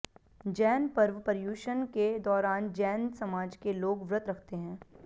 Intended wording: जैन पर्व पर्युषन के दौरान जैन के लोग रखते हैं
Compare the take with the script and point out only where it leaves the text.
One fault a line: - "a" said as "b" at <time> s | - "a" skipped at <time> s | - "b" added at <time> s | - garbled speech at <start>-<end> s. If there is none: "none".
- "समाज" added at 3.2 s
- "व्रत" added at 4.1 s